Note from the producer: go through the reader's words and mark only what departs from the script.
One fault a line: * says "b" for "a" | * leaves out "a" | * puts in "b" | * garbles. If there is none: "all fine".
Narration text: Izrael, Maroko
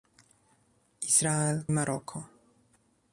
all fine